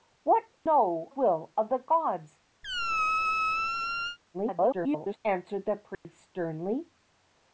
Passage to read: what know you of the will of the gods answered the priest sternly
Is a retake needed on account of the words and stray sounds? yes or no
yes